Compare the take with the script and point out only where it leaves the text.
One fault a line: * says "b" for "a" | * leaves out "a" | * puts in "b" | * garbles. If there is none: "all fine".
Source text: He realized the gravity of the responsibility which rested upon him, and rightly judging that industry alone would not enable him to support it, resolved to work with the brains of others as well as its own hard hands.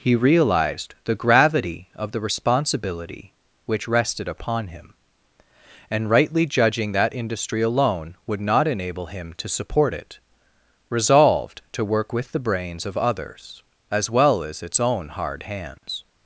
all fine